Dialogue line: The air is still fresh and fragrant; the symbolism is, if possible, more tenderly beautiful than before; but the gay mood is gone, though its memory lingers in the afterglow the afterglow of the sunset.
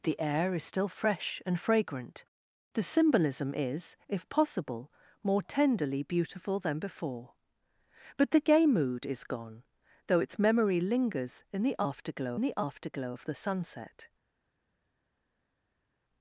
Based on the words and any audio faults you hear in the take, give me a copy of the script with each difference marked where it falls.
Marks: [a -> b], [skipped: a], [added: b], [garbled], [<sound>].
The air is still fresh and fragrant; the symbolism is, if possible, more tenderly beautiful than before; but the gay mood is gone, though its memory lingers in the afterglow the afterglow of the sunset.